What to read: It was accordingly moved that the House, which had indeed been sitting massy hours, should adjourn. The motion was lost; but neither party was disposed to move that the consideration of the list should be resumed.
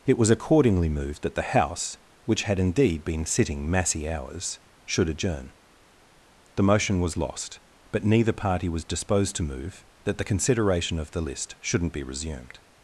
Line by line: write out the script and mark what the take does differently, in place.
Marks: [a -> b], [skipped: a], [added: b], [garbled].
It was accordingly moved that the House, which had indeed been sitting massy hours, should adjourn. The motion was lost; but neither party was disposed to move that the consideration of the list [should -> shouldn't] be resumed.